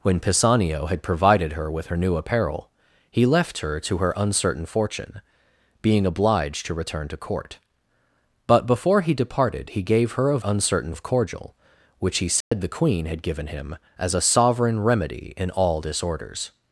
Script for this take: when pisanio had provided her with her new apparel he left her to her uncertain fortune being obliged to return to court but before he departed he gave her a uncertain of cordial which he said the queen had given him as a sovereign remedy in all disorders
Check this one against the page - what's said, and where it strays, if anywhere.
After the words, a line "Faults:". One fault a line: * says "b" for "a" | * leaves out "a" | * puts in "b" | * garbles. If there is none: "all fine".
when pisanio had provided her with her new apparel he left her to her uncertain fortune being obliged to return to court but before he departed he gave her a uncertain of cordial which he said the queen had given him as a sovereign remedy in all disorders
Faults:
all fine